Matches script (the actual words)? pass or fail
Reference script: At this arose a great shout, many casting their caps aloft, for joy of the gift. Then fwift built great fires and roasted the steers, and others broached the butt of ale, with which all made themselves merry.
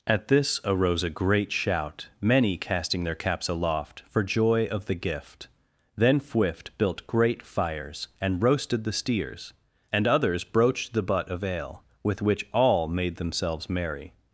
pass